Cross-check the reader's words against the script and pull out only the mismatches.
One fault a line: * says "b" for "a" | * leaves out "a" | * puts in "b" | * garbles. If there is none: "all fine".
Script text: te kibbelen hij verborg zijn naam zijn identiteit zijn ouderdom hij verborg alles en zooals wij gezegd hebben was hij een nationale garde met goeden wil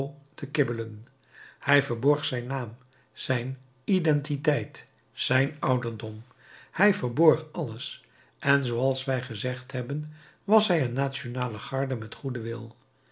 all fine